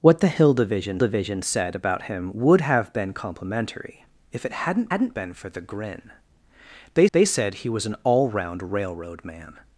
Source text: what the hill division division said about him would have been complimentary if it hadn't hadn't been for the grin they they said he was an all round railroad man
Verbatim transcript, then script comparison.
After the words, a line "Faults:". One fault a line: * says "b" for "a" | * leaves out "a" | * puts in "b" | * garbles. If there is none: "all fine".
what the hill division division said about him would have been complimentary if it hadn't hadn't been for the grin they they said he was an all round railroad man
Faults:
all fine